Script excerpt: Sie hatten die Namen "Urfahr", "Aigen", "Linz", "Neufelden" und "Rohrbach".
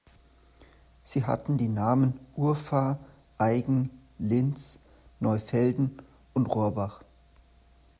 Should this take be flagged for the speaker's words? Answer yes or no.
no